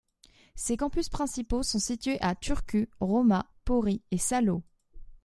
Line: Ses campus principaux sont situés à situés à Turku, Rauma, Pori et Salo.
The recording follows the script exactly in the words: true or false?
false